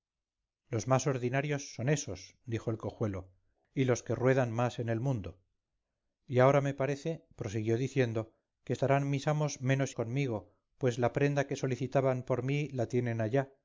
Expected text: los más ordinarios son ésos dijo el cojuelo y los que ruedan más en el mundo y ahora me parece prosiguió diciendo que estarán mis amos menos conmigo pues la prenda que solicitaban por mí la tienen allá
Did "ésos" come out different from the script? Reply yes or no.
no